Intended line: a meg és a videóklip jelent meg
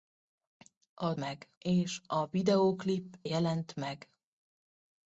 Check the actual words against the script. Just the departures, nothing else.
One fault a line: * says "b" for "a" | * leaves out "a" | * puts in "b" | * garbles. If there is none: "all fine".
all fine